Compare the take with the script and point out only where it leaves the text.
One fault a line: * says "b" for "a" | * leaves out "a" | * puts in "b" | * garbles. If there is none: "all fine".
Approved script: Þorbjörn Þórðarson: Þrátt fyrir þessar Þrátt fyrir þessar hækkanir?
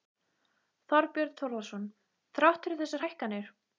* leaves out "Þrátt fyrir þessar"